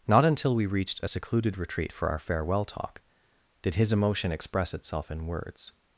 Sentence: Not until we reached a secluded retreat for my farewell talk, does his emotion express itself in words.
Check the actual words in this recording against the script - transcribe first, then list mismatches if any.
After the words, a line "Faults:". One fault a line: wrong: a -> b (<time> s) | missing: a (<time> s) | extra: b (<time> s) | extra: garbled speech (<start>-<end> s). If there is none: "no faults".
Not until we reached a secluded retreat for our farewell talk, did his emotion express itself in words.
Faults:
wrong: my -> our (2.1 s)
wrong: does -> did (3.6 s)